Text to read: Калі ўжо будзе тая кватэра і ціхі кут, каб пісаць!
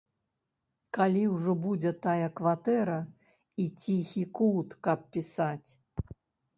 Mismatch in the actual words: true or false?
false